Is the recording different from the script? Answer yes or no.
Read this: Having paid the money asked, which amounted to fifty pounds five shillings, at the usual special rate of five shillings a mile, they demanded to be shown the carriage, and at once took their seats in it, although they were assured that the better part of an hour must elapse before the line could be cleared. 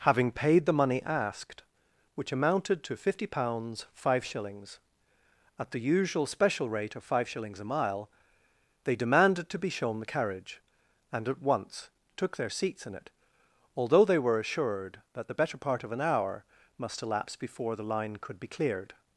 no